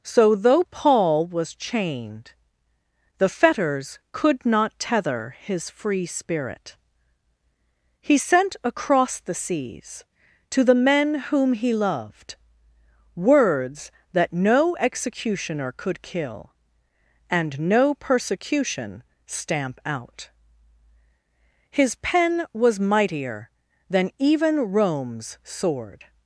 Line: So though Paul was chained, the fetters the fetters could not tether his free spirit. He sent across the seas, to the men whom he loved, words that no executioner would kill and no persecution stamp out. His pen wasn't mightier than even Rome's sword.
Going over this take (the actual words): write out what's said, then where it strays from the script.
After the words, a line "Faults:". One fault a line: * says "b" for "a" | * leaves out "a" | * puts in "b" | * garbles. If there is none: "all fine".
So though Paul was chained, the fetters could not tether his free spirit. He sent across the seas, to the men whom he loved, words that no executioner could kill and no persecution stamp out. His pen was mightier than even Rome's sword.
Faults:
* leaves out "the fetters"
* says "could" for "would"
* says "was" for "wasn't"